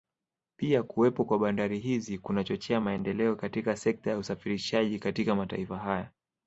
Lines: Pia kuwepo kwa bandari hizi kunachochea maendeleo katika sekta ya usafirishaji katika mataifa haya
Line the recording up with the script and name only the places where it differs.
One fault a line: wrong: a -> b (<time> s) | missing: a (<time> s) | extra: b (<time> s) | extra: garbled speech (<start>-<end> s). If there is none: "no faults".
no faults